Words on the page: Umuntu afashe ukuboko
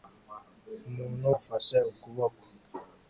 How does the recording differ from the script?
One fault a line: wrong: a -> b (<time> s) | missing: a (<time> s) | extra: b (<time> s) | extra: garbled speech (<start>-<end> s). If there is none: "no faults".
no faults